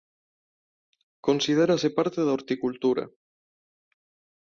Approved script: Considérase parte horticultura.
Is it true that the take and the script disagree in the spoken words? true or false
true